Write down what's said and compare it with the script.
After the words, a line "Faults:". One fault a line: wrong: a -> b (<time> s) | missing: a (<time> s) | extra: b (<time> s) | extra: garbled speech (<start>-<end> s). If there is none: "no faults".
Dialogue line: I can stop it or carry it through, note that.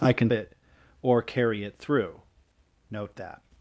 I can it or carry it through, note that.
Faults:
missing: stop (0.3 s)